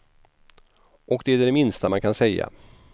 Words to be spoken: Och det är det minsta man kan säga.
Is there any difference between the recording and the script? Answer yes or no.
no